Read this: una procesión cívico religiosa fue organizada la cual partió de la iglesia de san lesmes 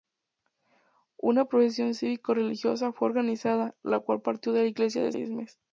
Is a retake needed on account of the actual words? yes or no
yes